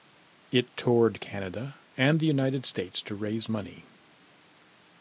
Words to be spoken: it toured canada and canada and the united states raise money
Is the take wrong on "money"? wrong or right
right